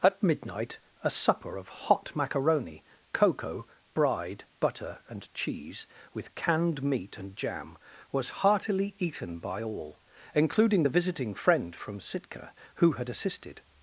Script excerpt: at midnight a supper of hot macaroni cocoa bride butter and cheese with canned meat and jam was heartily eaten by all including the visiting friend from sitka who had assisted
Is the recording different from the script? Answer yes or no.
no